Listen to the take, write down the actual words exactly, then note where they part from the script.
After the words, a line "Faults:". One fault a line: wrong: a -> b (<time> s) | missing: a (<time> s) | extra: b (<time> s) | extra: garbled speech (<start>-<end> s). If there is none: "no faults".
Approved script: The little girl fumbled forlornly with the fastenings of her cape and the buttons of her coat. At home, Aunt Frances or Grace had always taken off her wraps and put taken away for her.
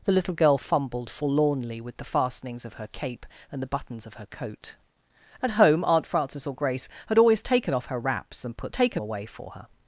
The little girl fumbled forlornly with the fastenings of her cape and the buttons of her coat. At home, Aunt Frances or Grace had always taken off her wraps and put taken away for her.
Faults:
no faults